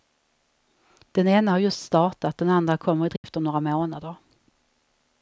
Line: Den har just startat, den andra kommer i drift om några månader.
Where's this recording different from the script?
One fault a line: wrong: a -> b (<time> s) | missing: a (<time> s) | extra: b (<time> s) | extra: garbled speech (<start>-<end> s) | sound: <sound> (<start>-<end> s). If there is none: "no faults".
extra: ena (1.3 s)
sound: dropout (3.2-3.2 s)